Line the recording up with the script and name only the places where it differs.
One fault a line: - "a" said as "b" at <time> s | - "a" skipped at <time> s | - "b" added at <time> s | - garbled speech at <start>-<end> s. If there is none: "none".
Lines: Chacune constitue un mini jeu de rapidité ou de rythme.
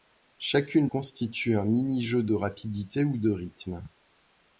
none